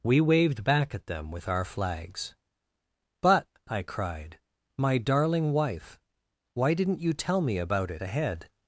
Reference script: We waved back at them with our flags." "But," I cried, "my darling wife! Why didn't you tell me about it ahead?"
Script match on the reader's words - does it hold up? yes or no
yes